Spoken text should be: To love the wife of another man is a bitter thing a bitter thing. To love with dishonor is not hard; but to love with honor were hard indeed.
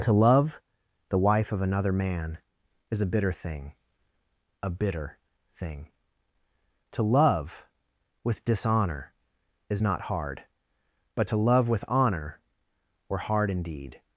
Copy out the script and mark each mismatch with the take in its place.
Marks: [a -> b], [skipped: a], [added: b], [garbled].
To love the wife of another man is a bitter thing a bitter thing. To love with dishonor is not hard; but to love with honor were hard indeed.